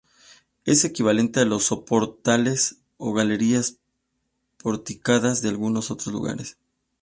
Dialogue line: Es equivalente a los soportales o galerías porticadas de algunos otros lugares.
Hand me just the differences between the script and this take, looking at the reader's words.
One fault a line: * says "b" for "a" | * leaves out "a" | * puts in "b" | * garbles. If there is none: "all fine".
all fine